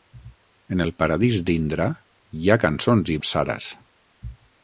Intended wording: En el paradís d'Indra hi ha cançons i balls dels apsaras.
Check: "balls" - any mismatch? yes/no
yes